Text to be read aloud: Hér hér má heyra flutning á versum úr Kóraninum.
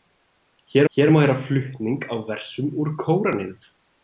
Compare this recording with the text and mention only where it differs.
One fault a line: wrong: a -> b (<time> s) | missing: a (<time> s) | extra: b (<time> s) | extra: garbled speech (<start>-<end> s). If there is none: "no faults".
no faults